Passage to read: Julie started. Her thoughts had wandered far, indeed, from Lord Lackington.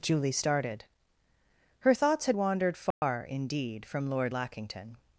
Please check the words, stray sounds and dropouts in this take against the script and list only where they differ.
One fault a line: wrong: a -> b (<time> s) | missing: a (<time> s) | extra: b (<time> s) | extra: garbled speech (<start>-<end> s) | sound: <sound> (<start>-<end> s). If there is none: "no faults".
sound: dropout (2.9-3.0 s)